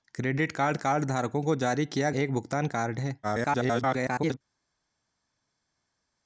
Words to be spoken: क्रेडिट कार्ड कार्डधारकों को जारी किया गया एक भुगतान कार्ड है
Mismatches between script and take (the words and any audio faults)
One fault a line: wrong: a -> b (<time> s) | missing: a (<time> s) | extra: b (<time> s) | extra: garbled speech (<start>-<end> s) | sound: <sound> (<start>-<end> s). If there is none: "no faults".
missing: गया (2.1 s)
extra: garbled speech (3.2-4.4 s)